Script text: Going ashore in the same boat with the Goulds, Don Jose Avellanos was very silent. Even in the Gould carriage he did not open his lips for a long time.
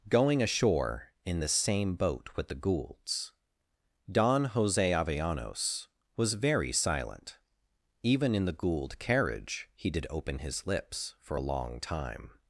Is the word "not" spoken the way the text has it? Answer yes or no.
no